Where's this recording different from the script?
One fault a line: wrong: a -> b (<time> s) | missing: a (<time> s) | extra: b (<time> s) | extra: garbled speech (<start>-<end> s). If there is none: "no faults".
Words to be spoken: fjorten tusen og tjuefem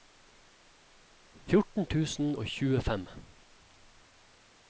no faults